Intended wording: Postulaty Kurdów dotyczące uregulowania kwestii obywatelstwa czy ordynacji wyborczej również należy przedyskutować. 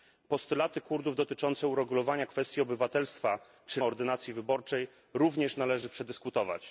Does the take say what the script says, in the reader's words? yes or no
yes